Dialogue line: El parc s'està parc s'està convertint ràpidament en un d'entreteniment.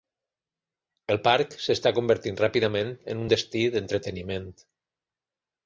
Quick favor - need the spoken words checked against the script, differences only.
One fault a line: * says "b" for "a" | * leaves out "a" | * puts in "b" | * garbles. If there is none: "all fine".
* leaves out "parc s'està"
* puts in "destí"